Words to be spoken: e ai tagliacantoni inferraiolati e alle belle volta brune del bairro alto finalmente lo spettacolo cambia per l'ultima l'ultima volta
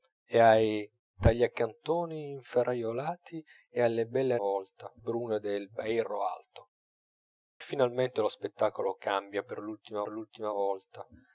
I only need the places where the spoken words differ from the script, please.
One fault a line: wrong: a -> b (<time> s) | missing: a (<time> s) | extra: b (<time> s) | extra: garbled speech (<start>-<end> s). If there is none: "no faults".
no faults